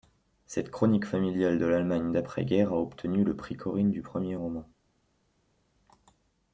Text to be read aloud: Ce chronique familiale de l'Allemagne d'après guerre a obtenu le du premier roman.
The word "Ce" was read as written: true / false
false